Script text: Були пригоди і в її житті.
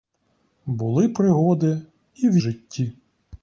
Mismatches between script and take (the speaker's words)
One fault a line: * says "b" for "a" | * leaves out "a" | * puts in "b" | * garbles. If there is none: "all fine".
* leaves out "її"